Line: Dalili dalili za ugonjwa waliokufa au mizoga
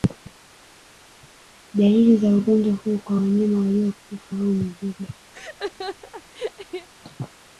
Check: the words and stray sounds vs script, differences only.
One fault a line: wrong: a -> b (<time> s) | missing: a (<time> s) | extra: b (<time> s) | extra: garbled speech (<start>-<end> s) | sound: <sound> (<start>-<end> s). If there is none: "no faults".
missing: dalili (2.2 s)
extra: huu kwa wanyama (2.7 s)
sound: laugh (5.3-6.9 s)